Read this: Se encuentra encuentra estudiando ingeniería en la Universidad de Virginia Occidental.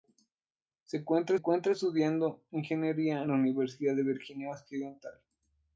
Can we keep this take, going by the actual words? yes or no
yes